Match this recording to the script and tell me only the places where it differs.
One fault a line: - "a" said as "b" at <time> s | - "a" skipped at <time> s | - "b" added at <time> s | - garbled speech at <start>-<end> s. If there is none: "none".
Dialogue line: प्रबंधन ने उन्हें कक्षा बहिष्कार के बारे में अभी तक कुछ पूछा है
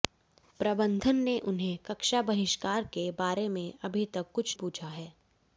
none